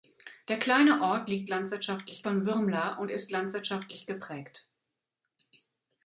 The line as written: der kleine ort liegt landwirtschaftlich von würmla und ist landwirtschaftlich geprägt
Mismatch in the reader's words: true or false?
false